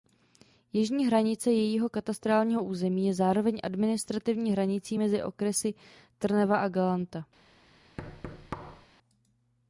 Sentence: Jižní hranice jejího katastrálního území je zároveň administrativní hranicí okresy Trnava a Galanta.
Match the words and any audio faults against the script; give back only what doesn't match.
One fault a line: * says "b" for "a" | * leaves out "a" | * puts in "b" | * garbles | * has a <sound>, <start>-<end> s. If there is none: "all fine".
* puts in "mezi"
* has a thud, 8.0-8.9 s